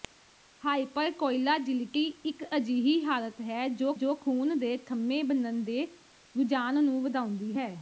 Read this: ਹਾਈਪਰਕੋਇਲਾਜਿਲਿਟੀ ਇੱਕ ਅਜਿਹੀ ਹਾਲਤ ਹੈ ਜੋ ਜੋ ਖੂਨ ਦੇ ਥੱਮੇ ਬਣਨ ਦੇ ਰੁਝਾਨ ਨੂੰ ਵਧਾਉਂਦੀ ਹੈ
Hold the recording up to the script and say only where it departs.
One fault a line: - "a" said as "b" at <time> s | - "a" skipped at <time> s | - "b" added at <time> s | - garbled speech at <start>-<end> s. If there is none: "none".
none